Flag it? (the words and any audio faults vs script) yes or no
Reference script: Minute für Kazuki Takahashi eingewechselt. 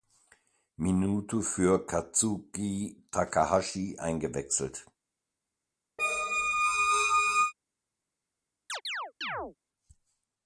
yes